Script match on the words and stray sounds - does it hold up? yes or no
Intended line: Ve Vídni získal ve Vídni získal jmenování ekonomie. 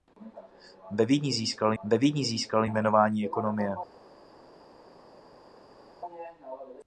yes